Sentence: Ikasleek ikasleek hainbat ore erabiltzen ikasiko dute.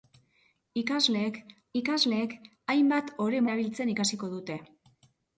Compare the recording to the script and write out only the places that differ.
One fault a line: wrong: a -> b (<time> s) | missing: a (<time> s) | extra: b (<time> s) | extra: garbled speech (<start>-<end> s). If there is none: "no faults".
no faults